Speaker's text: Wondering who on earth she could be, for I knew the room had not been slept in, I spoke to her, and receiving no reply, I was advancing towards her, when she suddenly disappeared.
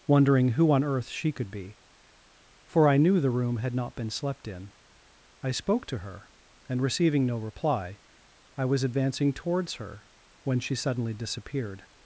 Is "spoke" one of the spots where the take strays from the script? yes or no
no